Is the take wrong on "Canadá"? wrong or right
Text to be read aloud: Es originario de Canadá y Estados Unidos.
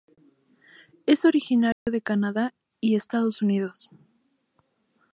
right